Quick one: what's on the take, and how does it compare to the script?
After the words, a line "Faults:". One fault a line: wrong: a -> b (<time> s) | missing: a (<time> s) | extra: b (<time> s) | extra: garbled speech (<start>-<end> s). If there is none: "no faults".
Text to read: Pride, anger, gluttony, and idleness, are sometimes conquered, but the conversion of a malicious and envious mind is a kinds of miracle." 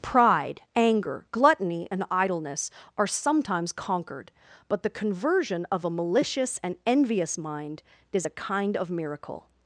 Pride, anger, gluttony, and idleness, are sometimes conquered, but the conversion of a malicious and envious mind is a kind of miracle."
Faults:
wrong: kinds -> kind (8.3 s)